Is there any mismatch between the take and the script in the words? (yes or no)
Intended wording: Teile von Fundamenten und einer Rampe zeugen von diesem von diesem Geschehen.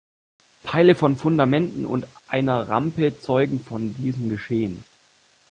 yes